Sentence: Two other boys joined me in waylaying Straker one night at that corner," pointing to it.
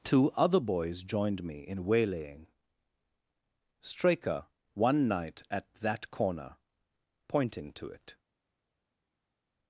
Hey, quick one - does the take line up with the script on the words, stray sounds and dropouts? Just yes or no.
yes